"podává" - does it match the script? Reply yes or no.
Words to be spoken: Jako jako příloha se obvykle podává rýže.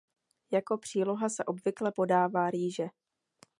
yes